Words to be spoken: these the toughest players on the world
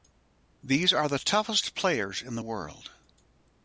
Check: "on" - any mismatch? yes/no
yes